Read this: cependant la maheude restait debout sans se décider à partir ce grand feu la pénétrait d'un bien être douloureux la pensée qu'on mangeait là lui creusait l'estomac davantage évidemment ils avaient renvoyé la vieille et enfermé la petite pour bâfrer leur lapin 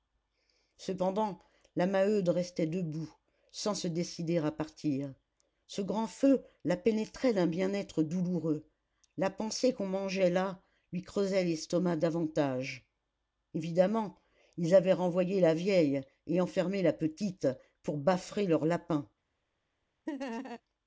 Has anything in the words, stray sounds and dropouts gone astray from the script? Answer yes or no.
yes